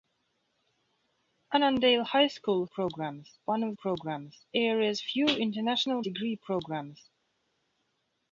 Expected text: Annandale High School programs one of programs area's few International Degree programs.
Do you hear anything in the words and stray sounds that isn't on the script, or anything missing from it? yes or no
no